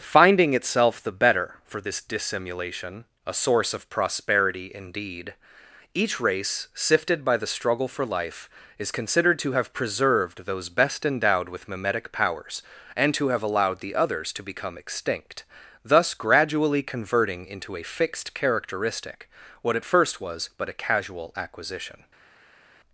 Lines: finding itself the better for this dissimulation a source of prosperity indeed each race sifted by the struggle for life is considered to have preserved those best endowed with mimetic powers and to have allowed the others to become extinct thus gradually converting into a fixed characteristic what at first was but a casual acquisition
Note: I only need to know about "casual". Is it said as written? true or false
true